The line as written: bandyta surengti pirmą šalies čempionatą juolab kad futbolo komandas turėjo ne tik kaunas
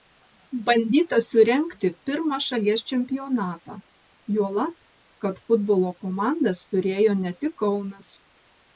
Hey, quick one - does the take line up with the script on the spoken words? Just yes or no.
yes